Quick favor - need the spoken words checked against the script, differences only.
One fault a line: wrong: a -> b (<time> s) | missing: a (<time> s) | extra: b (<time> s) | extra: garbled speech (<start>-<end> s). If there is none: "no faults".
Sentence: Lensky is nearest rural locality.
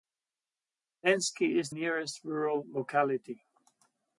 no faults